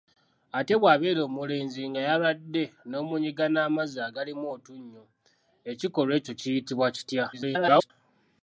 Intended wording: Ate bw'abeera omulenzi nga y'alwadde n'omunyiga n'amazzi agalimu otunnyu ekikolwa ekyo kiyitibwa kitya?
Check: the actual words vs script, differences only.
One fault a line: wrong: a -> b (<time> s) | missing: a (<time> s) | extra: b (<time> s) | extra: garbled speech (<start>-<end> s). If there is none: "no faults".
extra: garbled speech (7.3-7.9 s)